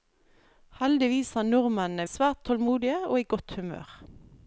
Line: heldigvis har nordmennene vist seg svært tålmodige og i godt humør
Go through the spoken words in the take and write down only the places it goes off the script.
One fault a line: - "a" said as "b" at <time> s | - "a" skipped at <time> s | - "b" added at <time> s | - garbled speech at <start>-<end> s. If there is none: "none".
- "vist" skipped at 2.1 s